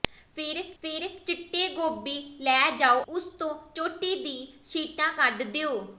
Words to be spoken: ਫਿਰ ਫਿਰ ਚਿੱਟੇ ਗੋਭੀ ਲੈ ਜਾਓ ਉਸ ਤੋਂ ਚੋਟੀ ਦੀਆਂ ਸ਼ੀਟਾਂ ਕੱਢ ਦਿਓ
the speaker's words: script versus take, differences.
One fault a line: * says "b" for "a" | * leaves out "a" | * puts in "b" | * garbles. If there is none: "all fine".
all fine